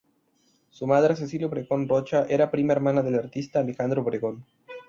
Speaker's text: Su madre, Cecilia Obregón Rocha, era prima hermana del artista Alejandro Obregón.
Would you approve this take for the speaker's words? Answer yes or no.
yes